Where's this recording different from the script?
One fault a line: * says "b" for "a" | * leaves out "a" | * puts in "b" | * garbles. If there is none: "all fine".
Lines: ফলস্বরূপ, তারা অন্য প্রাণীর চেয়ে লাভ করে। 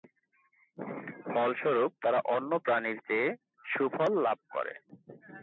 * puts in "সুফল"